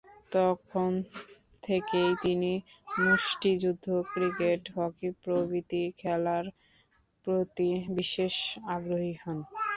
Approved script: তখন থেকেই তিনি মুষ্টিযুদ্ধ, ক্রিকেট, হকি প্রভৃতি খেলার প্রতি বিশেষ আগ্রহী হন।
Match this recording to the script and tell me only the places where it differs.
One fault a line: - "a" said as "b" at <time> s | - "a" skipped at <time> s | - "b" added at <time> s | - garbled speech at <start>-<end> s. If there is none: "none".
none